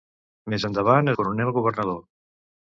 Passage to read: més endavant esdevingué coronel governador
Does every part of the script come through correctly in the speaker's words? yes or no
no